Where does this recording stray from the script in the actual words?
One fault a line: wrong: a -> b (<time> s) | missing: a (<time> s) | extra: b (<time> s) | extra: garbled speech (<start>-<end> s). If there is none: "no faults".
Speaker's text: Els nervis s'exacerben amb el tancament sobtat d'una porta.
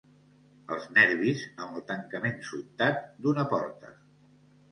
missing: s'exacerben (1.4 s)